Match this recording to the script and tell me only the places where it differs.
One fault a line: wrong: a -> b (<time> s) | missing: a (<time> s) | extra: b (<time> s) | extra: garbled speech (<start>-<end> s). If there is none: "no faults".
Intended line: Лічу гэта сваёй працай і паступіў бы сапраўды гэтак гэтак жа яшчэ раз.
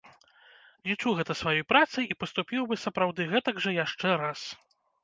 missing: гэтак (3.6 s)